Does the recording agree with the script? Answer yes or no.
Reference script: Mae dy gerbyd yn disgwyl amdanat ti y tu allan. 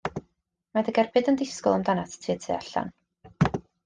yes